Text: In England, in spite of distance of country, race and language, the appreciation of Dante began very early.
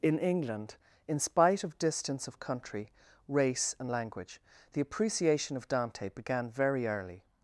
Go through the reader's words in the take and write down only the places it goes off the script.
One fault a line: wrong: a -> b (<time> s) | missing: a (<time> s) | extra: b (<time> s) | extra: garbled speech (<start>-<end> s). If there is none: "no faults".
no faults